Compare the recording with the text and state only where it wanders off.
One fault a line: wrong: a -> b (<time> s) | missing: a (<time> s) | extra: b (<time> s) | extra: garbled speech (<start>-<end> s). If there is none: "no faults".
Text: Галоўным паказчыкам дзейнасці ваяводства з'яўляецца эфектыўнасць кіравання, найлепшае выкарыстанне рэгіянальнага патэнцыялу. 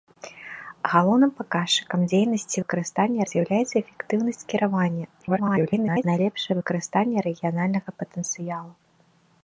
wrong: ваяводства -> выкарыстанне (2.6 s)
extra: garbled speech (5.2-6.0 s)